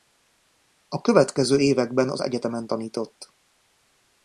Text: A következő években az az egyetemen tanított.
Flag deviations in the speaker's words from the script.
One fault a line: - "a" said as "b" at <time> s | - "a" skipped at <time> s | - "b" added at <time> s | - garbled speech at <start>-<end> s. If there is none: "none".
- "az" skipped at 2.2 s